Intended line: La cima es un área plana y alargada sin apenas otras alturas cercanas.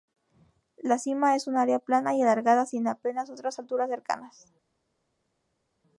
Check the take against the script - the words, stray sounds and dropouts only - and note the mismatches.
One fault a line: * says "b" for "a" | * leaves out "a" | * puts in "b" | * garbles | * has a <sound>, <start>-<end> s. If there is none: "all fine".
all fine